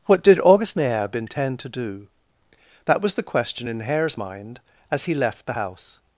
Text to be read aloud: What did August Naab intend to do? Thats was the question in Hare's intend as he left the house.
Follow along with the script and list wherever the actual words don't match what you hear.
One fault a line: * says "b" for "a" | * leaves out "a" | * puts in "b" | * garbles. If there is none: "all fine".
* says "That" for "Thats"
* says "mind" for "intend"